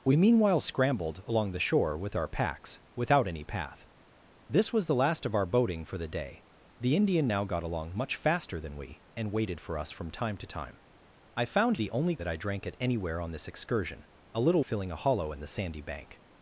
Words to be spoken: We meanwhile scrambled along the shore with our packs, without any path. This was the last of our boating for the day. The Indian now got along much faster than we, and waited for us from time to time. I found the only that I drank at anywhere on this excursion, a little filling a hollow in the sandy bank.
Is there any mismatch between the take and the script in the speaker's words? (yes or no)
no